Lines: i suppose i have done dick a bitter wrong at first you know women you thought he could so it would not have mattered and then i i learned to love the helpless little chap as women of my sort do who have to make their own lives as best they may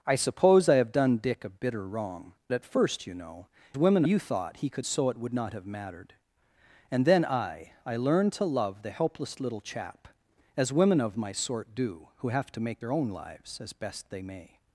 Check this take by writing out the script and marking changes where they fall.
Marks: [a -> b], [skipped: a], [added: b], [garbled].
i suppose i have done dick a bitter wrong at first you know women you thought he could so it would not have mattered and then i i learned to love the helpless little chap as women of my sort do who have to make their own lives as best they may